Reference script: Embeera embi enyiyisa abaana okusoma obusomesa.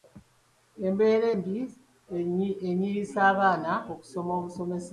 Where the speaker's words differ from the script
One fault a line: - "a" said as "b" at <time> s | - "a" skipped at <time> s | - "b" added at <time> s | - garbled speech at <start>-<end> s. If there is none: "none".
none